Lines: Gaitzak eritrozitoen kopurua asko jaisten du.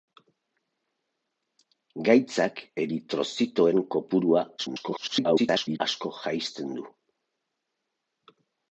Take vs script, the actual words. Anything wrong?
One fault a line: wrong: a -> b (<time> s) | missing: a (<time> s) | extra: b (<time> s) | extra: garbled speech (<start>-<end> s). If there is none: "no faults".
extra: garbled speech (4.6-5.8 s)